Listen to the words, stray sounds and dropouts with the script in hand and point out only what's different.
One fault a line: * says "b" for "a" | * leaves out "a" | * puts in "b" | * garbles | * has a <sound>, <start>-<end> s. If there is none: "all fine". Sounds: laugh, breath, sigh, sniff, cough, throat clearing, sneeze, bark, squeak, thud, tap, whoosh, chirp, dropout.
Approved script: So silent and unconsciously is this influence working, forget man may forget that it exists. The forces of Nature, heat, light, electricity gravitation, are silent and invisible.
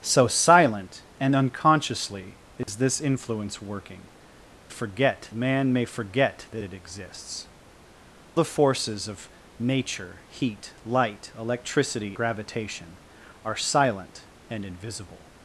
* has a dropout, 2.6-2.7 s